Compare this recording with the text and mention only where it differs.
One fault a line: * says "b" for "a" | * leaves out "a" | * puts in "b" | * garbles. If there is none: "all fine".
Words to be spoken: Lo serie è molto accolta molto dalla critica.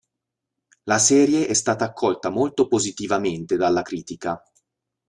* says "La" for "Lo"
* says "stata" for "molto"
* puts in "positivamente"